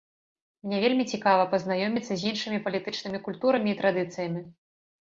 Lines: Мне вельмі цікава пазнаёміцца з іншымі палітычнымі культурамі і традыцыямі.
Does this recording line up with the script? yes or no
yes